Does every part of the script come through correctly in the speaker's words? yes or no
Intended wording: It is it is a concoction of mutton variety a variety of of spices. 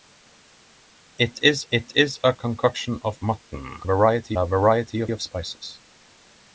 yes